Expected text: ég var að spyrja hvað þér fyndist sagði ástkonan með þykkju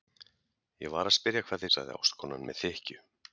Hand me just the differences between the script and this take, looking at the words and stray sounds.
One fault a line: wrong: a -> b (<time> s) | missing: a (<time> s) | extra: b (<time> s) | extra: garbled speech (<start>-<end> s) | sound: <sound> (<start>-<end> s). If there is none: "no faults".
missing: þér fyndist (1.6 s)